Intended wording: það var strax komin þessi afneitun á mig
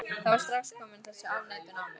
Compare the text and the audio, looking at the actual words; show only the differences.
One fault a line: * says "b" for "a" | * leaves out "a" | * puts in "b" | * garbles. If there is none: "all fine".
all fine